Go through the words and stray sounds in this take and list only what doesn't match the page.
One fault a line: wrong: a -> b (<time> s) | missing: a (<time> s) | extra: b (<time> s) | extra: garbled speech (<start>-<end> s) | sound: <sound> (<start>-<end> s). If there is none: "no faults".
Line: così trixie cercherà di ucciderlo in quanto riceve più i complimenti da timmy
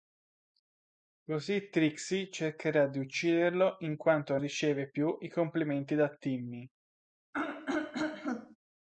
sound: throat clearing (7.3-8.6 s)